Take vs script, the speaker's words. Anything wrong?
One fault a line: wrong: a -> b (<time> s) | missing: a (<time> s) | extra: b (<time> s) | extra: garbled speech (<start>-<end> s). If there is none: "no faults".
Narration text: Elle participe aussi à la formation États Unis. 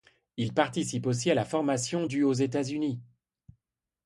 wrong: Elle -> Il (0.3 s)
extra: du aux (2.0 s)